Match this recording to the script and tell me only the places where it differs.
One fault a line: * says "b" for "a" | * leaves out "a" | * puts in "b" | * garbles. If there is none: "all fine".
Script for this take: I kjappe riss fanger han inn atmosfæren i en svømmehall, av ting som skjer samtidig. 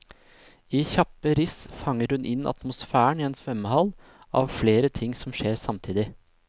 * says "hun" for "han"
* puts in "flere"